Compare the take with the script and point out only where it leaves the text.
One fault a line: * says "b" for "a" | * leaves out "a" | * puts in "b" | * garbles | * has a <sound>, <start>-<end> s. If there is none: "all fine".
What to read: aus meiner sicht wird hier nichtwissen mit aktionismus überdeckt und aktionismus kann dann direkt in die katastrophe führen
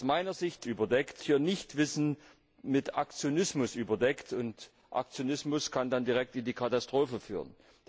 * says "überdeckt" for "wird"